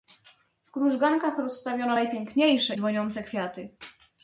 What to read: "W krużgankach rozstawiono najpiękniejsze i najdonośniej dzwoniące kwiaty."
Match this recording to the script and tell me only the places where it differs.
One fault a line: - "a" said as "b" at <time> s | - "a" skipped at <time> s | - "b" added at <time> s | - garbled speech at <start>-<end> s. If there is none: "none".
- "i najdonośniej" skipped at 2.7 s